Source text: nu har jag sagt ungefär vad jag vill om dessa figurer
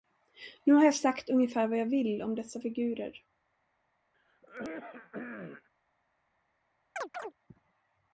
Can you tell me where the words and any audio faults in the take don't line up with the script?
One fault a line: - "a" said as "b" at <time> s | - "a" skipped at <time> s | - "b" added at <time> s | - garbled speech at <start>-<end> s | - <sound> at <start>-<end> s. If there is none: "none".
- throat clearing at 4.1-5.7 s
- chirp at 7.0-7.3 s